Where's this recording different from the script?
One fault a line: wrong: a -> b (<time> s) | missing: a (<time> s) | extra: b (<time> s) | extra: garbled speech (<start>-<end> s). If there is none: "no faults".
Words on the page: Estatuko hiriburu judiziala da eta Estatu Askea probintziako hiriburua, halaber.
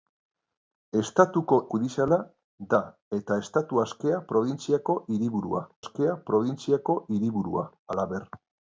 missing: hiriburu (1.6 s)
extra: Askea probintziako hiriburua (5.8 s)